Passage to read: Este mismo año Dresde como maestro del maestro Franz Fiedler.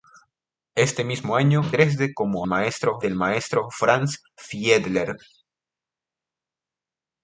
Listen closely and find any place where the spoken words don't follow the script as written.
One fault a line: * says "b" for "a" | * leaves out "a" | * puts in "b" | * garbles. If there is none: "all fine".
all fine